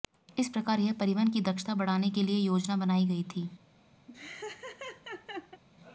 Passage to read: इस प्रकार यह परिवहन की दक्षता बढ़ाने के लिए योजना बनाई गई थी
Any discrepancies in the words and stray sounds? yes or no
yes